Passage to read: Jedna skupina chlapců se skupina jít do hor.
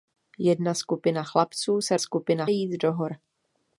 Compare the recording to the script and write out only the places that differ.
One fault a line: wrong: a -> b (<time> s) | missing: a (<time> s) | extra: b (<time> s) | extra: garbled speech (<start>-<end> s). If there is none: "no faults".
no faults